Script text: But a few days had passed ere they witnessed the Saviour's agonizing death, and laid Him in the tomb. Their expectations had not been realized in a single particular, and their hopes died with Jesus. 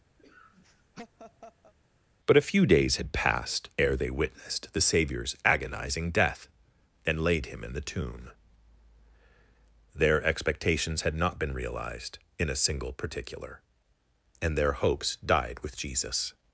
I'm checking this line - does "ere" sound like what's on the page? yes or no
yes